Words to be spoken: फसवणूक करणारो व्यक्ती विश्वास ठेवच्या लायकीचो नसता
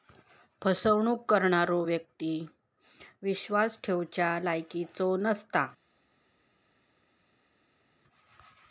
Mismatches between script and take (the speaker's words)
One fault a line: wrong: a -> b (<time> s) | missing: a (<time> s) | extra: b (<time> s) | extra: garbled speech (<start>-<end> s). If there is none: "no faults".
no faults